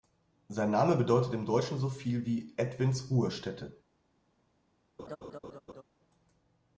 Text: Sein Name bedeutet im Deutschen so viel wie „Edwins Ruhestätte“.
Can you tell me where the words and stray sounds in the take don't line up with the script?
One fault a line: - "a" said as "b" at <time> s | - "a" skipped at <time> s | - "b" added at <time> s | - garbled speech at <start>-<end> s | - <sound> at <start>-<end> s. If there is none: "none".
- laugh at 5.0-5.8 s